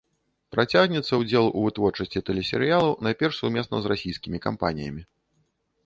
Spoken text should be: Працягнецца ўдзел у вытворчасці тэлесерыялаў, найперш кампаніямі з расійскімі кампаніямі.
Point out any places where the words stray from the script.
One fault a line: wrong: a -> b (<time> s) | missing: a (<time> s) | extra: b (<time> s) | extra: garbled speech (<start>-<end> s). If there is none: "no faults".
wrong: кампаніямі -> сумесна (3.4 s)